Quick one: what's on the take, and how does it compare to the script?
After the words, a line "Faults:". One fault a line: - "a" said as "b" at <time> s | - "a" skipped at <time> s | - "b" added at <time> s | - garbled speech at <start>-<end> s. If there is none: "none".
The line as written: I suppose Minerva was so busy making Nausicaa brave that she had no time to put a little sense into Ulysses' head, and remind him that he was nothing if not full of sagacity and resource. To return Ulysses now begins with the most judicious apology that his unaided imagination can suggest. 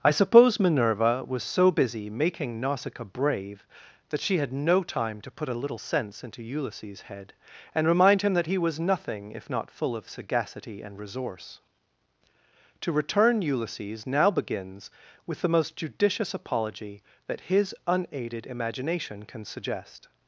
I suppose Minerva was so busy making Nausicaa brave that she had no time to put a little sense into Ulysses' head, and remind him that he was nothing if not full of sagacity and resource. To return Ulysses now begins with the most judicious apology that his unaided imagination can suggest.
Faults:
none